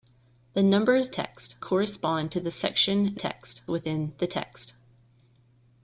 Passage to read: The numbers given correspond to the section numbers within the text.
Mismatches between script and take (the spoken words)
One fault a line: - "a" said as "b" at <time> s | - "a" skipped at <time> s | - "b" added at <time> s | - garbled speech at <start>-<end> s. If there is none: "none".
- "given" said as "text" at 1.1 s
- "numbers" said as "text" at 3.1 s